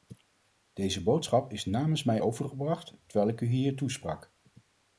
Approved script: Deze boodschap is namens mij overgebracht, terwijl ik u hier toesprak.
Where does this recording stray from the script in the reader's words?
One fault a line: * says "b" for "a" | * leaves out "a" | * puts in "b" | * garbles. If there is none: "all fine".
all fine